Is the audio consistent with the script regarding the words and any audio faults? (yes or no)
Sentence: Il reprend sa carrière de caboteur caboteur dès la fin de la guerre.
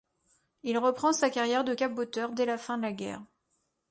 no